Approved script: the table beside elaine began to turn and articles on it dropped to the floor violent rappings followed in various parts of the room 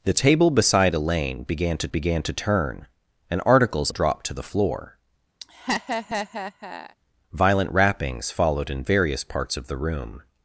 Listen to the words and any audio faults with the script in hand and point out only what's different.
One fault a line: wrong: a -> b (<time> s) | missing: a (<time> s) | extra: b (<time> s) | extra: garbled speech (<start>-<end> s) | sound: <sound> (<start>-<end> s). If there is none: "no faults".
extra: began to (1.9 s)
missing: on it (3.9 s)
sound: laugh (5.4-7.0 s)